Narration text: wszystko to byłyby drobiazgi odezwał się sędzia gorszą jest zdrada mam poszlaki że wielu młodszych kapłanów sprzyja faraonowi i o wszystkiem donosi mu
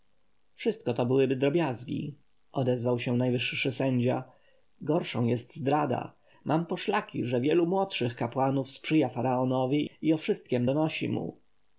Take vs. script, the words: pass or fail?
fail